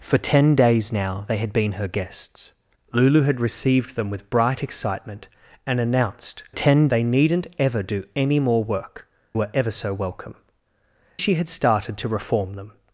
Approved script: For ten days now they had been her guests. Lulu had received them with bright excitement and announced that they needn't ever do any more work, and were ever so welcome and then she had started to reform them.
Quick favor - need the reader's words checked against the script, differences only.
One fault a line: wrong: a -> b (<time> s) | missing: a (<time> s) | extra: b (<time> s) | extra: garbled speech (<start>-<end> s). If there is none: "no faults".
wrong: that -> ten (6.5 s)
missing: and (9.1 s)
missing: and then (10.4 s)